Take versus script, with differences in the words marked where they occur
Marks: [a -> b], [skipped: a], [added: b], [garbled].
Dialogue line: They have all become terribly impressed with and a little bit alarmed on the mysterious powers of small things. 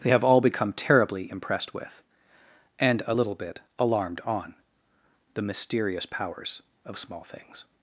They have all become terribly impressed with and a little bit alarmed on the mysterious powers of small things.